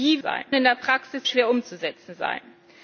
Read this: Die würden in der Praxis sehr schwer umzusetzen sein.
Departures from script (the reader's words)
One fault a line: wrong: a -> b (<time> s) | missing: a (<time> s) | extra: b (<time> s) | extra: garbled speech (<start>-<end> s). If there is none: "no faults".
wrong: würden -> sein (0.2 s)
missing: sehr (1.2 s)